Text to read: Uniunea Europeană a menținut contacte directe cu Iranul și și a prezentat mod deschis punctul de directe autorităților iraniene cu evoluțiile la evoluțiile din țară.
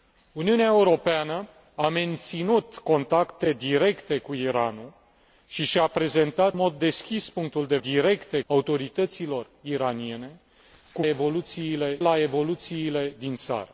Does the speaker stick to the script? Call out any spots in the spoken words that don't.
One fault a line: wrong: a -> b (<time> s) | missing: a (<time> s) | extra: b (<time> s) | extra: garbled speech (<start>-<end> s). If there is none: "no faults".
no faults